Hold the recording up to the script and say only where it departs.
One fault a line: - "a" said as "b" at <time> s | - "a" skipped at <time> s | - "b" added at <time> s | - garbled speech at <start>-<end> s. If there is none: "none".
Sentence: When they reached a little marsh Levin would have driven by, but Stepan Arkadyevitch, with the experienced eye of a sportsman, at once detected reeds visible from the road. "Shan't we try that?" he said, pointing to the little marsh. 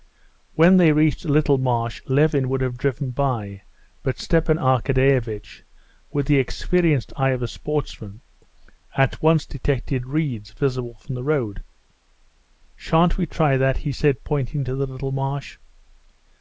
none